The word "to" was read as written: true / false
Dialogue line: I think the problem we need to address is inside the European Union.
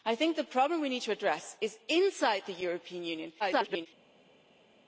true